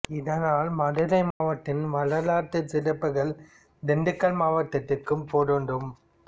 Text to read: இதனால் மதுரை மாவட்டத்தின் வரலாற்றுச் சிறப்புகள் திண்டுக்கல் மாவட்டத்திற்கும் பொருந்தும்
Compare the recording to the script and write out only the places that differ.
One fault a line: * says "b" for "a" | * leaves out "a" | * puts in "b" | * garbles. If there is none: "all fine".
all fine